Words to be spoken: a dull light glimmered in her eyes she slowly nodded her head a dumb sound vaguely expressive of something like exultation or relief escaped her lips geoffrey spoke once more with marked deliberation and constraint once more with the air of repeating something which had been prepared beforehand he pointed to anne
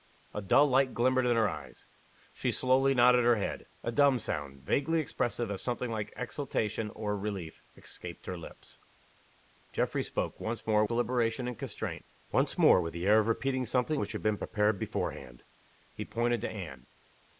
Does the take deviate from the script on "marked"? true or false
true